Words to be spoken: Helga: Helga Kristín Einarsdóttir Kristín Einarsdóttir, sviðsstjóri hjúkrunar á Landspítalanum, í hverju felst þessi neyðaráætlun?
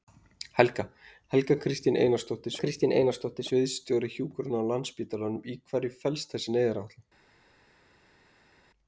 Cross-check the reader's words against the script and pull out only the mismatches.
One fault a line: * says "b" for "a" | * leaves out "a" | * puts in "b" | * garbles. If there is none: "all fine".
all fine